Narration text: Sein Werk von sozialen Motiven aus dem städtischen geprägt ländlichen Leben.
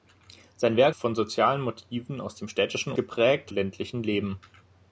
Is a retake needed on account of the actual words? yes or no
no